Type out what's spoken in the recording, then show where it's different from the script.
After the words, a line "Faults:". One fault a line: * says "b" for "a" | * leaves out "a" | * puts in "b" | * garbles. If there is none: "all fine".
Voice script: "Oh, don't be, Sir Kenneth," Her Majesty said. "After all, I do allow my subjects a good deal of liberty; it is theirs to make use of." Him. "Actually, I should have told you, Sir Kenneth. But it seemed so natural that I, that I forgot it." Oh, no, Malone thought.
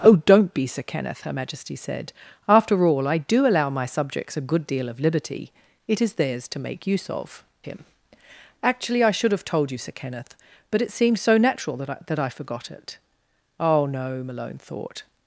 "Oh, don't be, Sir Kenneth," Her Majesty said. "After all, I do allow my subjects a good deal of liberty; it is theirs to make use of." Him. "Actually, I should have told you, Sir Kenneth. But it seemed so natural that I, that I forgot it." Oh, no, Malone thought.
Faults:
all fine